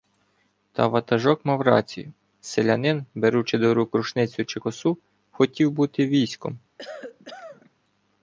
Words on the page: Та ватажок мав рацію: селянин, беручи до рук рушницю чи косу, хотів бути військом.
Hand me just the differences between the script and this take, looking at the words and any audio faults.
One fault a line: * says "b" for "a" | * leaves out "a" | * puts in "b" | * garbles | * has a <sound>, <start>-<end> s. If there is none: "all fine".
* has a cough, 6.8-7.7 s